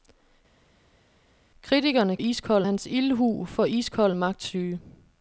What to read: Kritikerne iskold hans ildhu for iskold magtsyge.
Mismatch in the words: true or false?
false